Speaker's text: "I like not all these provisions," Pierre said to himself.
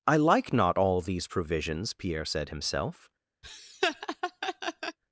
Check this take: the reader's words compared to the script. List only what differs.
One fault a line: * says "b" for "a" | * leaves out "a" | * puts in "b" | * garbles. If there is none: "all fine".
* leaves out "to"